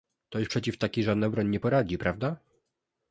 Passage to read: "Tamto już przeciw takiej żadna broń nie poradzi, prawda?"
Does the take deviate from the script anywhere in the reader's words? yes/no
yes